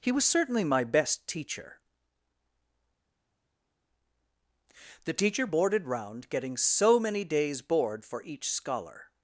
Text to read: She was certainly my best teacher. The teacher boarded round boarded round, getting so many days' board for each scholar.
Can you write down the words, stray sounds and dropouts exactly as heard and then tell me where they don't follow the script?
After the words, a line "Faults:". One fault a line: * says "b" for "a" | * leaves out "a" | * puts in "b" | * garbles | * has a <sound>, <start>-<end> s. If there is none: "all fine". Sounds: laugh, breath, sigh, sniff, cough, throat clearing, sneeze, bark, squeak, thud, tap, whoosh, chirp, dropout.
He was certainly my best teacher. The teacher boarded round, getting so many days' board for each scholar.
Faults:
* says "He" for "She"
* leaves out "boarded round"